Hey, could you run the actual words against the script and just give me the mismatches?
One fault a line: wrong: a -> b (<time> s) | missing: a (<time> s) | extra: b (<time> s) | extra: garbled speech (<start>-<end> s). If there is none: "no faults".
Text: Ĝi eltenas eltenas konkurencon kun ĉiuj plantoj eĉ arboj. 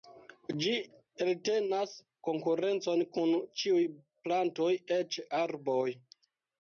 missing: eltenas (1.9 s)